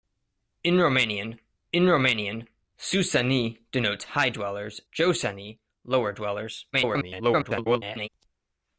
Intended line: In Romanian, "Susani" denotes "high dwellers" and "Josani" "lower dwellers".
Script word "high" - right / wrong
right